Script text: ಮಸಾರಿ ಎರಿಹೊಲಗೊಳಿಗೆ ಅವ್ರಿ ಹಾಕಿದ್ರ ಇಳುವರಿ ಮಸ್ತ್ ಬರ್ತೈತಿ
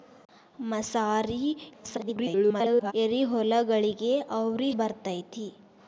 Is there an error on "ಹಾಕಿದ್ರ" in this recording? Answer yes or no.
yes